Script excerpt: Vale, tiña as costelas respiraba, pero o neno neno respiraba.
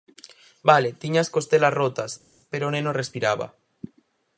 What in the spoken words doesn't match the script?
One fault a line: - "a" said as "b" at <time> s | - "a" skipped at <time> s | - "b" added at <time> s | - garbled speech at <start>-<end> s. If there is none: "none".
- "respiraba" said as "rotas" at 1.8 s
- "neno" skipped at 2.9 s